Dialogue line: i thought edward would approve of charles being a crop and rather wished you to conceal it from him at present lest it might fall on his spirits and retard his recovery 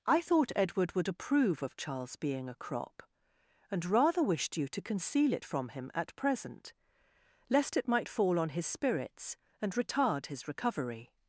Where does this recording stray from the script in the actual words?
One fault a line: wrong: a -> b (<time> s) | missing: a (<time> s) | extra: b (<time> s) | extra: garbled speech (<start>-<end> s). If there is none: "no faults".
no faults